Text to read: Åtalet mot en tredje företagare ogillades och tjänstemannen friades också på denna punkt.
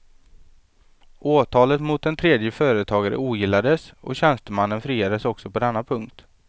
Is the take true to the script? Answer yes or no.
yes